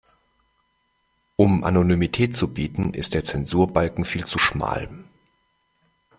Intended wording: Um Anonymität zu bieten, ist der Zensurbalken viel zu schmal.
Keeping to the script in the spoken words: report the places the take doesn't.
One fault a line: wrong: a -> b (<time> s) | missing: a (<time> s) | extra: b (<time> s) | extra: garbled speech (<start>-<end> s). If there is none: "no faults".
no faults